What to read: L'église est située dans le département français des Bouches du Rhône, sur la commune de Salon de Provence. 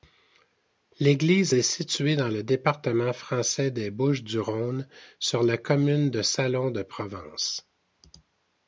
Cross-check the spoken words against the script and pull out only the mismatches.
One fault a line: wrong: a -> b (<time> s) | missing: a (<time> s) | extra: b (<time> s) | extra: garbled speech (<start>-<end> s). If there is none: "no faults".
no faults